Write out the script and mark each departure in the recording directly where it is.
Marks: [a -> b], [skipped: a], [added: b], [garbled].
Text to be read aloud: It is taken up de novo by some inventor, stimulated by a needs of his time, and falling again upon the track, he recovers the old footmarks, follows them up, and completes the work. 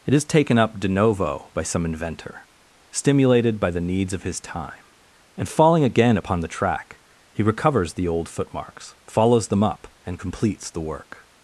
It is taken up de novo by some inventor, stimulated by [a -> the] needs of his time, and falling again upon the track, he recovers the old footmarks, follows them up, and completes the work.